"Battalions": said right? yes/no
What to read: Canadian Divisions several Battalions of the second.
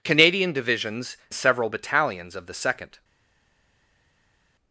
yes